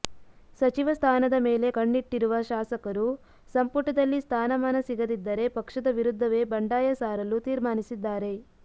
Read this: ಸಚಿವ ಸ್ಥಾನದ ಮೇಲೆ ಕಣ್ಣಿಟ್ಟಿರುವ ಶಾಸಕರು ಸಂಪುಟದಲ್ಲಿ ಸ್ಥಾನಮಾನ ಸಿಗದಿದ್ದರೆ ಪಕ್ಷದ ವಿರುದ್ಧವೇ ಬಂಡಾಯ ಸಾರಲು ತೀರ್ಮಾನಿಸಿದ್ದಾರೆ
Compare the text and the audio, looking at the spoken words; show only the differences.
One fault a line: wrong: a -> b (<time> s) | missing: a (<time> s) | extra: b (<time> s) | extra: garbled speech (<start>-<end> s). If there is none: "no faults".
no faults